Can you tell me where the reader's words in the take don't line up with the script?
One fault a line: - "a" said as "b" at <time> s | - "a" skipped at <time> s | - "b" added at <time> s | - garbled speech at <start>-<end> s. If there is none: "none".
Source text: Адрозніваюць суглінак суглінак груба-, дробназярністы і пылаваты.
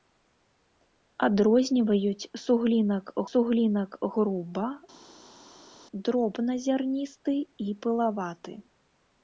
none